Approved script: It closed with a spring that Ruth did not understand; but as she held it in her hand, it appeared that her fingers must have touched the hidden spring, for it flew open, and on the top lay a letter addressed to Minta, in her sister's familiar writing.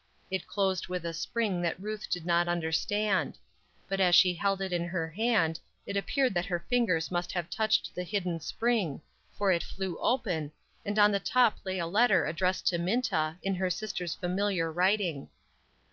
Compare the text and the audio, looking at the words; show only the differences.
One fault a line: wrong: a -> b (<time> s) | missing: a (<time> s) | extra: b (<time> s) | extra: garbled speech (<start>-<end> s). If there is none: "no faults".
no faults